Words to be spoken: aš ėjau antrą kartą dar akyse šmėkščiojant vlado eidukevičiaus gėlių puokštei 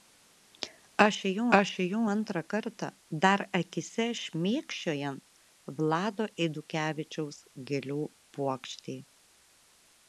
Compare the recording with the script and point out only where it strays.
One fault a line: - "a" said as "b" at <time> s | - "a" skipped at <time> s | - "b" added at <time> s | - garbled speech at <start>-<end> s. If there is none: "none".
- "aš ėjau" added at 1.6 s